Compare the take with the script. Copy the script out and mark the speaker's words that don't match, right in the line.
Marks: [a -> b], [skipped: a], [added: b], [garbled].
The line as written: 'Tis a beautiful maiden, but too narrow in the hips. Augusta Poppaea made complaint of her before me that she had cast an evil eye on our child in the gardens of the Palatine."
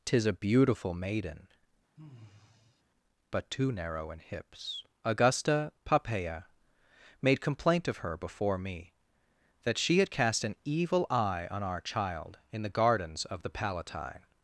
'Tis a beautiful maiden, but too narrow in [skipped: the] hips. Augusta Poppaea made complaint of her before me that she had cast an evil eye on our child in the gardens of the Palatine."